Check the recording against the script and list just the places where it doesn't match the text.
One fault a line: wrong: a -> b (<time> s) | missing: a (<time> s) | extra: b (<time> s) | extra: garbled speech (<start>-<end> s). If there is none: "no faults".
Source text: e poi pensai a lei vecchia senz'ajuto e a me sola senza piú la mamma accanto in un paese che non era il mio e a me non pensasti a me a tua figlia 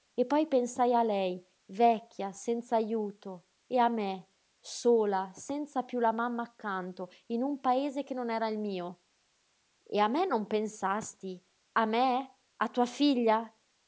no faults